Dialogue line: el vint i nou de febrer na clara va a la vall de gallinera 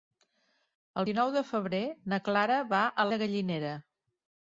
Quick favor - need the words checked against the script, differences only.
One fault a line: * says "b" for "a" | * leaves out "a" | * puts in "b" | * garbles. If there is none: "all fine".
* leaves out "vint"
* leaves out "la vall"